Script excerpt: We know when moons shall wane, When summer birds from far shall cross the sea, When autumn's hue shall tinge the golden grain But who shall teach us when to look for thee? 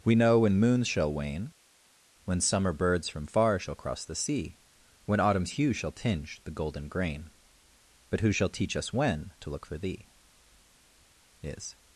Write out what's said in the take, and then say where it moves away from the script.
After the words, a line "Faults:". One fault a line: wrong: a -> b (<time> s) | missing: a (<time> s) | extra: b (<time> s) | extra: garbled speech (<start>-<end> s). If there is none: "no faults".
We know when moons shall wane, When summer birds from far shall cross the sea, When autumn's hue shall tinge the golden grain But who shall teach us when to look for thee? Is
Faults:
extra: Is (11.4 s)